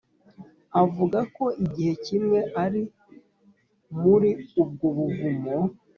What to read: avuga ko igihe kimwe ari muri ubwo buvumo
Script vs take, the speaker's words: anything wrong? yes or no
no